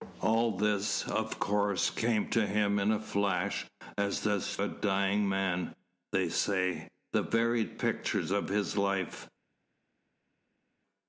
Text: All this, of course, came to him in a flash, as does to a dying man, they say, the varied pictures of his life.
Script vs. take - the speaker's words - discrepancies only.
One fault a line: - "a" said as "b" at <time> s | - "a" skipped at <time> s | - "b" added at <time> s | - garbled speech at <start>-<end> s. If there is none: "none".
- "to" skipped at 4.6 s